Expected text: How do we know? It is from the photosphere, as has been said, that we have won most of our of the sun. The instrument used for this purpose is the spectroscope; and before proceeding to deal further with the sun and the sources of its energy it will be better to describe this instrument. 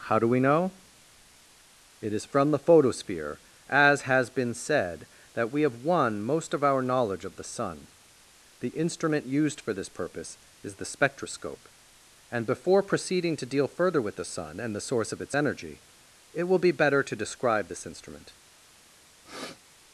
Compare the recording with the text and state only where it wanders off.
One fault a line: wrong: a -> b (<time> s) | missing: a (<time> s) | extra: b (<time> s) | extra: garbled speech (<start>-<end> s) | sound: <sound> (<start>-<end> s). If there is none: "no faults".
extra: knowledge (6.8 s)
wrong: sources -> source (14.8 s)
sound: sniff (19.2-19.6 s)